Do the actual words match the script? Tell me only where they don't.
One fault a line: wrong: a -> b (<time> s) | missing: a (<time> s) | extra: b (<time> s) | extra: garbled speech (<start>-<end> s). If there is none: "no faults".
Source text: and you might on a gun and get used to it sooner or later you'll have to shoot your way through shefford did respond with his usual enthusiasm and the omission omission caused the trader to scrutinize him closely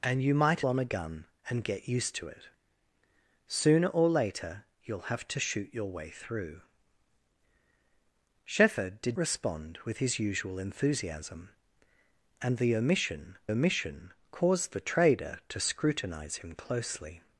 no faults